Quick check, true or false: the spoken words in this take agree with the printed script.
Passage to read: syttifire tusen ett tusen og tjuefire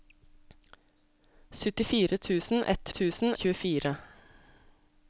true